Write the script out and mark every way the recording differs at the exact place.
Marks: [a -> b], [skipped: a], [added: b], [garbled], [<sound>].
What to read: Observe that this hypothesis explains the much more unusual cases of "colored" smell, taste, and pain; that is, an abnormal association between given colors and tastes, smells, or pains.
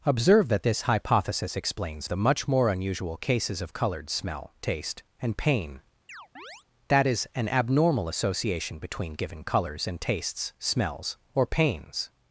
Observe that this hypothesis explains the much more unusual cases of "colored" smell, taste, and pain; [chirp] that is, an abnormal association between given colors and tastes, smells, or pains.